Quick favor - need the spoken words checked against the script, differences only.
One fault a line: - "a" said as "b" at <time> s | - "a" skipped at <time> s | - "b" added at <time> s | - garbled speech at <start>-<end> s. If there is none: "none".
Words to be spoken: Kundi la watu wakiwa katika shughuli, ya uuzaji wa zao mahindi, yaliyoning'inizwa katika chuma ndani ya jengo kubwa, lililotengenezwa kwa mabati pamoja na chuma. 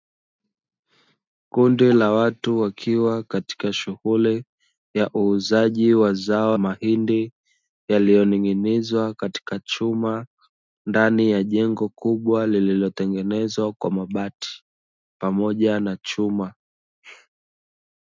none